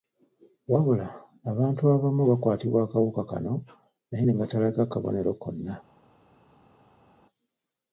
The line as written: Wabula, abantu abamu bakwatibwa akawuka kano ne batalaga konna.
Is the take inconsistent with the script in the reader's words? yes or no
yes